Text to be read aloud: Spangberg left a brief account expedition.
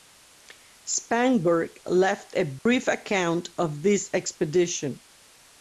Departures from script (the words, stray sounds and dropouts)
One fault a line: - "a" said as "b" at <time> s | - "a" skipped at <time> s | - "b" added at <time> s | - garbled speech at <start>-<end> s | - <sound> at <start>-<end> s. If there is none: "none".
- dropout at 2.6-2.7 s
- "of this" added at 3.6 s